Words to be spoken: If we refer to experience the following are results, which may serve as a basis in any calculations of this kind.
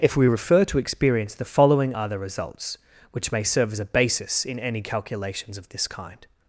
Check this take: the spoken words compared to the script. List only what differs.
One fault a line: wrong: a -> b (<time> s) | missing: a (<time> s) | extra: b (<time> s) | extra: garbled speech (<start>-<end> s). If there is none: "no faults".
extra: the (2.1 s)